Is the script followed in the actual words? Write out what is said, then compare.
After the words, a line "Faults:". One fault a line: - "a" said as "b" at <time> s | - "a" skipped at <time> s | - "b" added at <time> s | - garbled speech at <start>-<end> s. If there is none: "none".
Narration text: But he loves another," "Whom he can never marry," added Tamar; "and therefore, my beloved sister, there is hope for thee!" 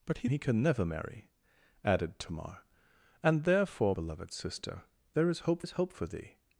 But he he can never marry," added Tamar; "and therefore, beloved sister, there is hope is hope for thee!"
Faults:
- "loves another Whom" skipped at 0.3 s
- "my" skipped at 4.0 s
- "is hope" added at 5.6 s